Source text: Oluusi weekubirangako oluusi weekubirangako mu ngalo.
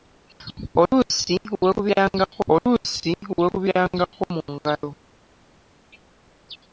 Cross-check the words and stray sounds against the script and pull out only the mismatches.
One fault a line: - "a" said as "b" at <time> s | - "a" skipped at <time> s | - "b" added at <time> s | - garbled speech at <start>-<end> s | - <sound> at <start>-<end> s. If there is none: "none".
none